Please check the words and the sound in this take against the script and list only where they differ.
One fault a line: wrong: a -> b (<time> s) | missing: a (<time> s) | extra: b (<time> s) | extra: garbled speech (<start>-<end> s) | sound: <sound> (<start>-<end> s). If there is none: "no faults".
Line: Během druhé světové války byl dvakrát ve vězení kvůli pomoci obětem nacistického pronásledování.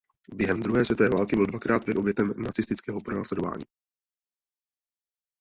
missing: vězení kvůli pomoci (1.9 s)